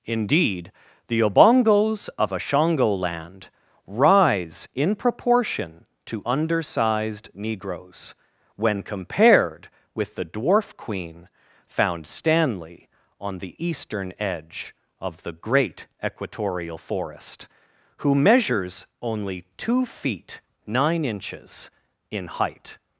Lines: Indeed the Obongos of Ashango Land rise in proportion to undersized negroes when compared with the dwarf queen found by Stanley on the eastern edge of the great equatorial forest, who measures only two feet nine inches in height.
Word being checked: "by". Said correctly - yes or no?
no